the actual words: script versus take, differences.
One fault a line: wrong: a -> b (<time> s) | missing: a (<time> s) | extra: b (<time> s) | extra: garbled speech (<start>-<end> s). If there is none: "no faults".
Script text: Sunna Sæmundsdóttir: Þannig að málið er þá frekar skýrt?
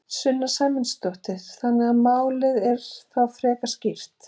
no faults